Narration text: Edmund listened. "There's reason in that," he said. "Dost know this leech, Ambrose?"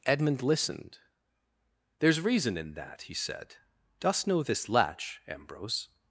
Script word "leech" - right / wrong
wrong